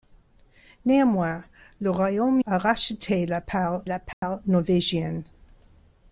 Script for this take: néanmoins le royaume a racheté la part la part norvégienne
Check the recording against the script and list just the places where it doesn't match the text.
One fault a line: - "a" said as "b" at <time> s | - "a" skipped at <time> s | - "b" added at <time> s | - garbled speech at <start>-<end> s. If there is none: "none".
none